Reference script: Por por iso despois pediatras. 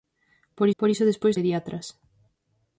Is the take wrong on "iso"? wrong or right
right